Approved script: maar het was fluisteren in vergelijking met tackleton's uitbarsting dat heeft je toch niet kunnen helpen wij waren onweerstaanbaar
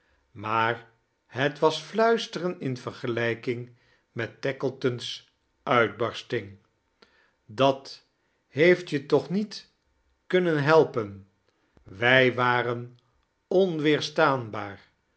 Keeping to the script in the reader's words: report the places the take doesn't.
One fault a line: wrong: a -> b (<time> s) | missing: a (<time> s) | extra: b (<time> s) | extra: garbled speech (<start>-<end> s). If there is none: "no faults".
no faults